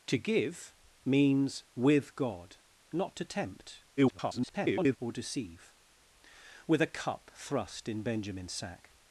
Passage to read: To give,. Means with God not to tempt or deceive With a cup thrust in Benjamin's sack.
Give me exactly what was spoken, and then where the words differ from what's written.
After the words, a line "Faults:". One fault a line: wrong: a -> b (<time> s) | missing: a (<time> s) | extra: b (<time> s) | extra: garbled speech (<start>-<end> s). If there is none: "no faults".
To give,. Means with God not to tempt [garbled] or deceive With a cup thrust in Benjamin's sack.
Faults:
extra: garbled speech (4.0-5.0 s)